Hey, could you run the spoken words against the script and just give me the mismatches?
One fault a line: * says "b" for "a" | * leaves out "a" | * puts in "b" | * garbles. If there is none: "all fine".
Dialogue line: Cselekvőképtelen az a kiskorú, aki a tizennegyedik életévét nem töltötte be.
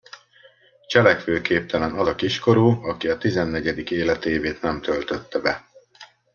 all fine